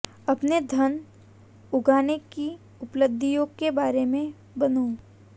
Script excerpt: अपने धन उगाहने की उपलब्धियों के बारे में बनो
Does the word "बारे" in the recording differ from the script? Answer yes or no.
no